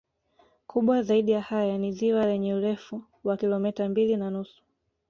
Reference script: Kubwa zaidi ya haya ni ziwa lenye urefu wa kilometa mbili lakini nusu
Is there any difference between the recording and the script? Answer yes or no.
yes